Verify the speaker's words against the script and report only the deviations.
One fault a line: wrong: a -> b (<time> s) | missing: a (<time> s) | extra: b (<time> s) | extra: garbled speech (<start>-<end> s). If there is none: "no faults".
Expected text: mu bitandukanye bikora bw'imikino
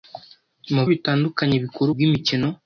no faults